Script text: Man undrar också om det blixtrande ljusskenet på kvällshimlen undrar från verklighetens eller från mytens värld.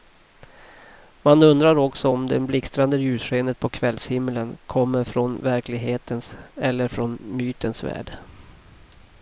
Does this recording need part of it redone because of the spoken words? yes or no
yes